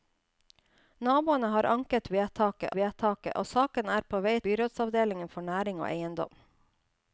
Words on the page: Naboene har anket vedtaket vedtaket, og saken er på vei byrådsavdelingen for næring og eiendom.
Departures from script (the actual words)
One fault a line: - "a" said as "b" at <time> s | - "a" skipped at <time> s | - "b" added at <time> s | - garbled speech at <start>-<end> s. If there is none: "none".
none